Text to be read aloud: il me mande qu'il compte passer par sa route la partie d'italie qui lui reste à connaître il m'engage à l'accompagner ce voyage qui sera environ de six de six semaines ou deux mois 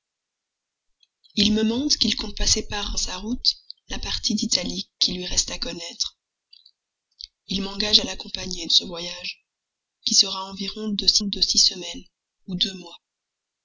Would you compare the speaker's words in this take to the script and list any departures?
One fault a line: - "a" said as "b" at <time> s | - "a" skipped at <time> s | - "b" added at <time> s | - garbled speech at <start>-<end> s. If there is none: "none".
none